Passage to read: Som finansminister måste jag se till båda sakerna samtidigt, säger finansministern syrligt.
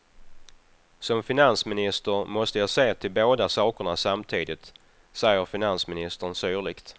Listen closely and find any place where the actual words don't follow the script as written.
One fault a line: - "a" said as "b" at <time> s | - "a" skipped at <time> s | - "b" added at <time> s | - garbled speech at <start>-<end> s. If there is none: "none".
none